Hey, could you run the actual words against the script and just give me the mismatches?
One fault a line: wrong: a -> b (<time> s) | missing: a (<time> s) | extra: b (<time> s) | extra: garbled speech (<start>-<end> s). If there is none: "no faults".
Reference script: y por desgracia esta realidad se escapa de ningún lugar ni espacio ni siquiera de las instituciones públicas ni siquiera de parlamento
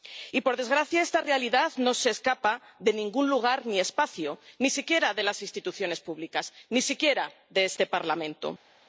extra: no (1.8 s)
extra: este (7.7 s)